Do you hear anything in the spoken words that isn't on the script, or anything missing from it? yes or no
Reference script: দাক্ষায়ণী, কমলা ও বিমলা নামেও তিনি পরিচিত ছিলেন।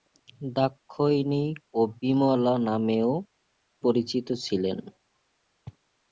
yes